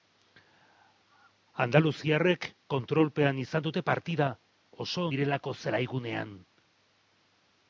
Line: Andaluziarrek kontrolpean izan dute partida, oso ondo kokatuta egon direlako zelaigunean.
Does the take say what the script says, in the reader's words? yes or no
no